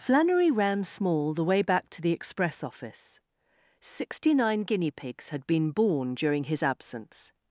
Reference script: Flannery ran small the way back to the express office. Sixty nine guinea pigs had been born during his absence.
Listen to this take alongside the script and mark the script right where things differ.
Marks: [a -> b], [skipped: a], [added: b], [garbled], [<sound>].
Flannery ran small the way back to the express office. Sixty nine guinea pigs had been born during his absence.